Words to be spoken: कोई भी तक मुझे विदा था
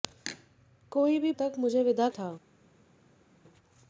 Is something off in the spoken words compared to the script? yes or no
no